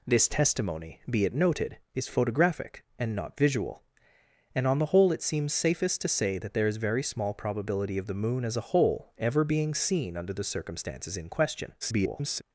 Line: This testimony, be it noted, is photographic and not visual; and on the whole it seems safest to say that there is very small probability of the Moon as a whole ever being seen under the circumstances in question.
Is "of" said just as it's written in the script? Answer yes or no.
yes